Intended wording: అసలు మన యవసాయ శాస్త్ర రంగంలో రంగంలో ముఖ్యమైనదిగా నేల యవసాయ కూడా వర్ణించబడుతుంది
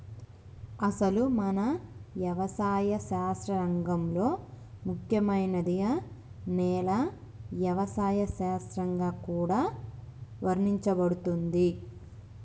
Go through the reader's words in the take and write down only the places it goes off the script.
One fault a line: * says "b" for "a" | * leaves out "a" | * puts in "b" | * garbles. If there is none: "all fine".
* leaves out "రంగంలో"
* puts in "శాస్త్రంగా"